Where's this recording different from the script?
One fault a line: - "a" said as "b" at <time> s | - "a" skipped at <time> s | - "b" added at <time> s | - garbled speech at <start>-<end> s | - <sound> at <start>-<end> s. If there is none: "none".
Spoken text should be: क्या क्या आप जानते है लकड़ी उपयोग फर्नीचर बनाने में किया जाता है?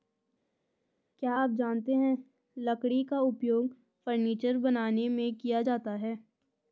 - "क्या" skipped at 1.3 s
- "का" added at 3.0 s